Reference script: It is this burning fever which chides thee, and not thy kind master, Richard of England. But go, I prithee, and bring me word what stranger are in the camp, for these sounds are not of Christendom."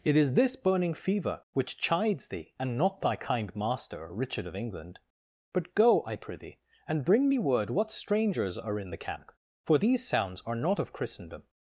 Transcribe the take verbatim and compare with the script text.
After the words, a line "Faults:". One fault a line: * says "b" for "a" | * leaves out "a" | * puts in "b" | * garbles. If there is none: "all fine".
It is this burning fever which chides thee, and not thy kind master, Richard of England. But go, I prithee, and bring me word what strangers are in the camp, for these sounds are not of Christendom."
Faults:
* says "strangers" for "stranger"